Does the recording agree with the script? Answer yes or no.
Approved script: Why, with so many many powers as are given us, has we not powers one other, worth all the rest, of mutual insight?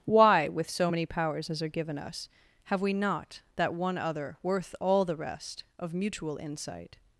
no